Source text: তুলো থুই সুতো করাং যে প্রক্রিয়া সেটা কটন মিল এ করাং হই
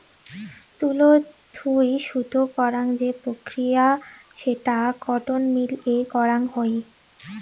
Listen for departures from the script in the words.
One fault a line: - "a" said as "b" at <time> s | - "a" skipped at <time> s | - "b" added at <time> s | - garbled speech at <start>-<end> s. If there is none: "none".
none